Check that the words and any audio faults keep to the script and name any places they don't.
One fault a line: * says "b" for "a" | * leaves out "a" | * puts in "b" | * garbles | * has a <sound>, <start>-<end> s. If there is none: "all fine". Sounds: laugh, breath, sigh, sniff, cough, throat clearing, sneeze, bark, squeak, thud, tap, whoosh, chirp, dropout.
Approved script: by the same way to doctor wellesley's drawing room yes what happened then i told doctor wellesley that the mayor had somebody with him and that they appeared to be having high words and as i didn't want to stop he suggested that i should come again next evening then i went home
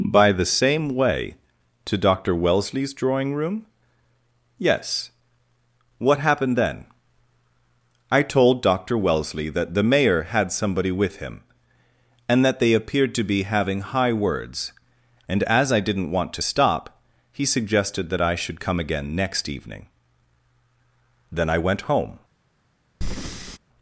* has a breath, 23.0-23.6 s